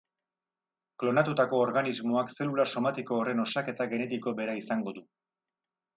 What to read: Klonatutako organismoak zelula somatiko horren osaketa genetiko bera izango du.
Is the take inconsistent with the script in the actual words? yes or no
no